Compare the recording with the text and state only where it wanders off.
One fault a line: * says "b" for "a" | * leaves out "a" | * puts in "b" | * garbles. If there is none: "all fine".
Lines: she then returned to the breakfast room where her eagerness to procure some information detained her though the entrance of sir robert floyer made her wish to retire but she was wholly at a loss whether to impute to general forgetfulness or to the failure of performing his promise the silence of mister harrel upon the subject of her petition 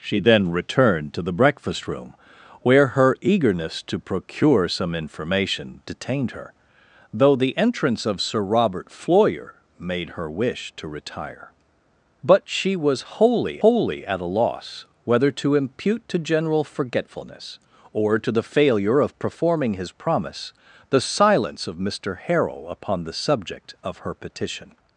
* puts in "wholly"